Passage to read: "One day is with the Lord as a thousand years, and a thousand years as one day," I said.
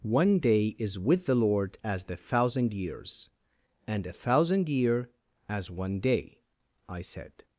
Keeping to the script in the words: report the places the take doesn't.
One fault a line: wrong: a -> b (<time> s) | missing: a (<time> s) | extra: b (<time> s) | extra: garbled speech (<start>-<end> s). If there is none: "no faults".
wrong: a -> the (2.1 s)
wrong: years -> year (4.7 s)